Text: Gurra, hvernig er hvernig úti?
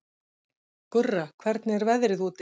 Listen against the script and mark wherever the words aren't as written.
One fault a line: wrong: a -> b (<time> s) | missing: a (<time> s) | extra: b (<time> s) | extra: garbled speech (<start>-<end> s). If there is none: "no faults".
wrong: hvernig -> veðrið (1.9 s)